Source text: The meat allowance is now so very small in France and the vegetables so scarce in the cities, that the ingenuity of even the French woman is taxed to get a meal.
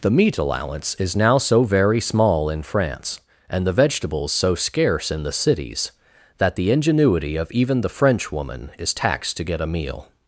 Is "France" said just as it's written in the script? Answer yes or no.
yes